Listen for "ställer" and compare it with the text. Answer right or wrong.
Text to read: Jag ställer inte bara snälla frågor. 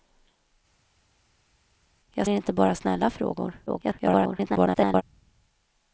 wrong